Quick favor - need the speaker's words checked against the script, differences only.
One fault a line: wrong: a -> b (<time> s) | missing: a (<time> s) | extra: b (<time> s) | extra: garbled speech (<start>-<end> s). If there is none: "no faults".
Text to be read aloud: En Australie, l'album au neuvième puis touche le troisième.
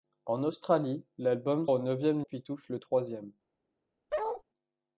no faults